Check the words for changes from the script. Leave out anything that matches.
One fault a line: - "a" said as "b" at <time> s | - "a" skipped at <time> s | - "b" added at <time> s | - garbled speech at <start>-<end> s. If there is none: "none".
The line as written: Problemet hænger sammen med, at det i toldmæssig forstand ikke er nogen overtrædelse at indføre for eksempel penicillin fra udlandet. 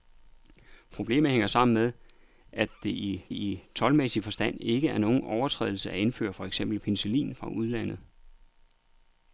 - "i" added at 3.3 s